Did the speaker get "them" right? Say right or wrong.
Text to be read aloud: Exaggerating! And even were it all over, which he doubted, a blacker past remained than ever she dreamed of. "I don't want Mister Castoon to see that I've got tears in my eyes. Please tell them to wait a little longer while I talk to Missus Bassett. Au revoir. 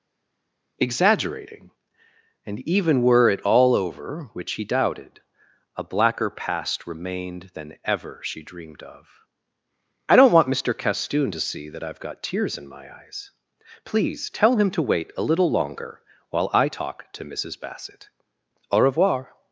wrong